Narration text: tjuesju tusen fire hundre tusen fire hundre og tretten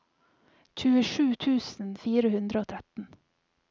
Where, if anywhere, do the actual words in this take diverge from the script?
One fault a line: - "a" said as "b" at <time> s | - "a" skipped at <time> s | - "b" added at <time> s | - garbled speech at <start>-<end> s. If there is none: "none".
- "tusen fire hundre" skipped at 2.6 s